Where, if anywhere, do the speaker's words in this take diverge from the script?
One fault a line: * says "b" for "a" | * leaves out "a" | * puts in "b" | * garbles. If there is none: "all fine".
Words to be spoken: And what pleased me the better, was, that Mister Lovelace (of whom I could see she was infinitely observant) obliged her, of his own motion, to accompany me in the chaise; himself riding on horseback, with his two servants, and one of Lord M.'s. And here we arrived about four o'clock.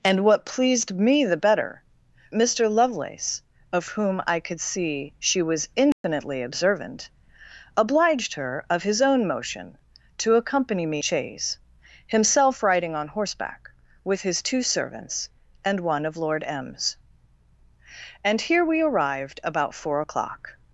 * leaves out "was that"
* leaves out "in the"